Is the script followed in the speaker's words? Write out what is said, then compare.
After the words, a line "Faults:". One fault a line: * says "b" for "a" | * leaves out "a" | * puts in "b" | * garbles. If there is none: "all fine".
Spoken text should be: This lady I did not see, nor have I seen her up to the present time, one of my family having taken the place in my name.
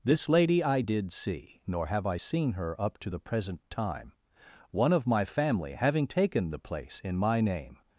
This lady I did see, nor have I seen her up to the present time, one of my family having taken the place in my name.
Faults:
* leaves out "not"